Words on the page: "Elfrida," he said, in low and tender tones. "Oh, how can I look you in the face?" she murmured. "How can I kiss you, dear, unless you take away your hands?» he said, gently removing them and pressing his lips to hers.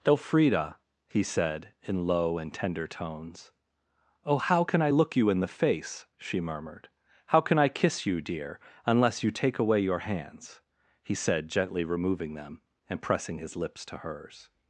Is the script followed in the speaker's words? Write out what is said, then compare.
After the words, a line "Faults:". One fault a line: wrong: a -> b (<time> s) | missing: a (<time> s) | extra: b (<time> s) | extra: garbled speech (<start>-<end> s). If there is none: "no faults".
"Elfrida," he said, in low and tender tones. "Oh, how can I look you in the face?" she murmured. "How can I kiss you, dear, unless you take away your hands?» he said, gently removing them and pressing his lips to hers.
Faults:
no faults